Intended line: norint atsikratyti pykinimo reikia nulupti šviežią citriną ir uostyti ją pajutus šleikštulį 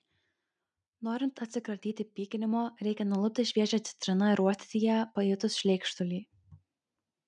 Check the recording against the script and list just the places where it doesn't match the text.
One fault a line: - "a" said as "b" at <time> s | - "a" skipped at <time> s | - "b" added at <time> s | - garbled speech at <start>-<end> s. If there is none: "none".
none